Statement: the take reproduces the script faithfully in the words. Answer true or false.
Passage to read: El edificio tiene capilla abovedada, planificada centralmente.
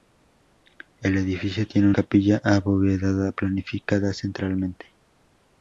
true